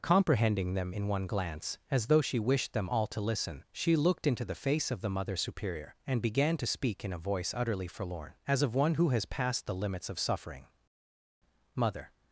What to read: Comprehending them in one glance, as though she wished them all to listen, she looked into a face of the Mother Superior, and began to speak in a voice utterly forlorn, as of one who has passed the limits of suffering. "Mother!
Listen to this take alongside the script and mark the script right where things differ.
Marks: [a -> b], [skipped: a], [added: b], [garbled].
Comprehending them in one glance, as though she wished them all to listen, she looked into [a -> the] face of the Mother Superior, and began to speak in a voice utterly forlorn, as of one who has passed the limits of suffering. "Mother!